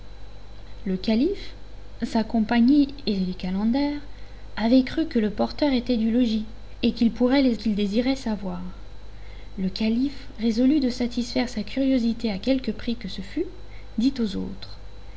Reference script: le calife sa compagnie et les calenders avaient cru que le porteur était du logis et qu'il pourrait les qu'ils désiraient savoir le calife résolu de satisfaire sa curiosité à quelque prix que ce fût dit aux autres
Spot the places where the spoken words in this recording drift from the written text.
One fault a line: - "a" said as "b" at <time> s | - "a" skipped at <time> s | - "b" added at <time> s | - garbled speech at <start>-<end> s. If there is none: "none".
none